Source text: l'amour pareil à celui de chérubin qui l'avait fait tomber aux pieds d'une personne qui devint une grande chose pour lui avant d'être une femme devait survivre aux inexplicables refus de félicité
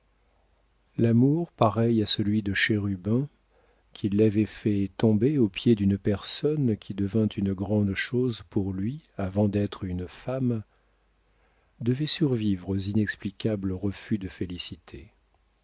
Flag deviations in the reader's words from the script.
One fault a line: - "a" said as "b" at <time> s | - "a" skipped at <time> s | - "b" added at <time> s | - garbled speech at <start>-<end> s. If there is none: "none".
none